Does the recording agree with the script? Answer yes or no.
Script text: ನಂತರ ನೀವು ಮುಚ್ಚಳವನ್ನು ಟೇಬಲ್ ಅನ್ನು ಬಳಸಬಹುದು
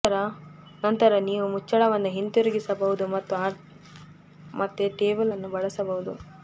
no